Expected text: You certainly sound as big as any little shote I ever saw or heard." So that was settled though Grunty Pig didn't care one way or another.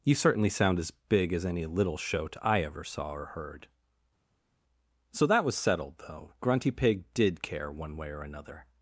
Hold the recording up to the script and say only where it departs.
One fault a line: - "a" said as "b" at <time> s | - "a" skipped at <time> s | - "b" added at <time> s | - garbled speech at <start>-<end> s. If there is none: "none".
- "didn't" said as "did" at 7.1 s